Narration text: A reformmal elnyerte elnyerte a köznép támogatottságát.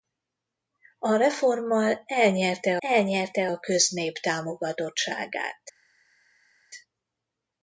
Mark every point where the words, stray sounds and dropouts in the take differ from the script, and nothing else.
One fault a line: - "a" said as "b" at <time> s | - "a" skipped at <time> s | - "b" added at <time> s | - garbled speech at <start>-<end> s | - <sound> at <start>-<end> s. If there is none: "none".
none